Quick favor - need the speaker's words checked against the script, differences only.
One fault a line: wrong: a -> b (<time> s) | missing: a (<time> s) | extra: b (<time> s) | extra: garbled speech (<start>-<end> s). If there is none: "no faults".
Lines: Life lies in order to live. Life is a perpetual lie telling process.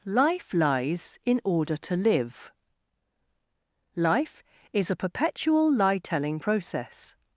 no faults